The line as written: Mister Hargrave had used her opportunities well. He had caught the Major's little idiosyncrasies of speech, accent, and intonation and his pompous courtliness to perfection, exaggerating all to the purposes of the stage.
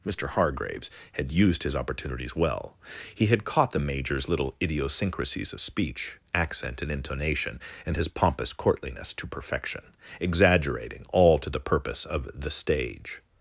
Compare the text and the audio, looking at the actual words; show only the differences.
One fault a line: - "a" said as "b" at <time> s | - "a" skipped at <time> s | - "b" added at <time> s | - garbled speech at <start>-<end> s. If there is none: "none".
- "Hargrave" said as "Hargraves" at 0.3 s
- "her" said as "his" at 1.6 s
- "purposes" said as "purpose" at 11.6 s